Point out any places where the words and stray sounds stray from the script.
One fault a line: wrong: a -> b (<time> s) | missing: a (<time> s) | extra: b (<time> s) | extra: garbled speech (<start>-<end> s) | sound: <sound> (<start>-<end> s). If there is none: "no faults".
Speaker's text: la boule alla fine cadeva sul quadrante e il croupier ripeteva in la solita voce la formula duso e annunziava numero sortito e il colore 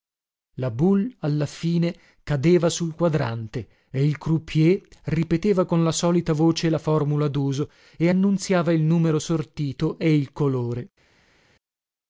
wrong: in -> con (5.7 s)
extra: il (8.7 s)